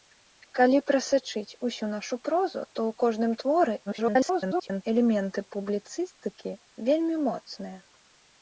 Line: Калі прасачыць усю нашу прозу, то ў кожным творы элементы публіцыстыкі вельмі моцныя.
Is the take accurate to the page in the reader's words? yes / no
no